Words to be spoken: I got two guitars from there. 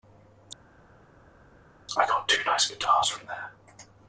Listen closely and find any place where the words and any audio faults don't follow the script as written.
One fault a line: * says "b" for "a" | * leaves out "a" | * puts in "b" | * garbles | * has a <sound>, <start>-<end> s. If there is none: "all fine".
* puts in "nice"